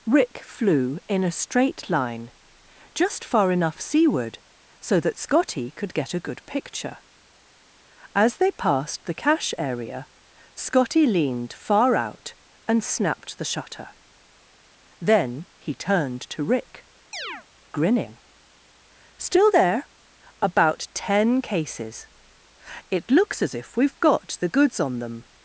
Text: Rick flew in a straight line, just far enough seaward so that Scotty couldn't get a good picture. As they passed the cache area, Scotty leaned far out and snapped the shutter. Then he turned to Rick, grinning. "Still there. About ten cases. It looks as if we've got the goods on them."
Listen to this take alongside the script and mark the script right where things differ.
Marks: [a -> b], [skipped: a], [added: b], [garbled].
Rick flew in a straight line, just far enough seaward so that Scotty [couldn't -> could] get a good picture. As they passed the cache area, Scotty leaned far out and snapped the shutter. Then he turned to Rick, grinning. "Still there. About ten cases. It looks as if we've got the goods on them."